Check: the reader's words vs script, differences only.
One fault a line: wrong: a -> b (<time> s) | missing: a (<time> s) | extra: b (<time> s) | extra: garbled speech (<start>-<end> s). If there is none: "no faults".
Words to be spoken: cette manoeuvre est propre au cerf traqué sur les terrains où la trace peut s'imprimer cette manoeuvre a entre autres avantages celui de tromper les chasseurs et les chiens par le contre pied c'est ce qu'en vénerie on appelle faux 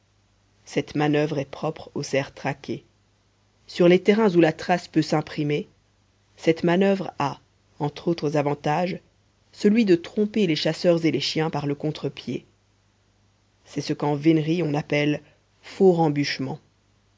no faults